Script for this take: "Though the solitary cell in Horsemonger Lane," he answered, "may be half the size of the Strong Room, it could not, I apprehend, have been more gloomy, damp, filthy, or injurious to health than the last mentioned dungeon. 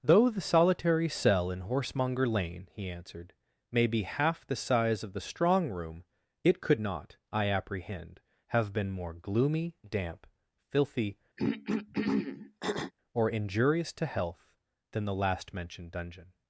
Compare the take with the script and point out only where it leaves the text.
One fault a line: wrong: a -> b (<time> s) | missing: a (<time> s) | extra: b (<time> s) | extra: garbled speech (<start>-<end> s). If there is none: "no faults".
no faults